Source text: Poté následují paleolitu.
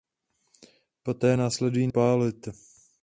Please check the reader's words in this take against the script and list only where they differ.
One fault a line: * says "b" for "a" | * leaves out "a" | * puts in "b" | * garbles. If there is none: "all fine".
all fine